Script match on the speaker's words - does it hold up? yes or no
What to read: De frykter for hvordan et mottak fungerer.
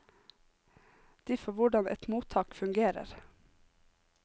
no